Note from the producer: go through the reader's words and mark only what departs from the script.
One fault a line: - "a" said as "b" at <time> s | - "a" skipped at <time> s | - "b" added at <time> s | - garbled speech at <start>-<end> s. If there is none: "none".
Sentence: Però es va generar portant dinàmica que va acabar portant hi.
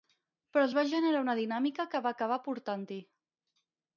- "portant" said as "una" at 1.2 s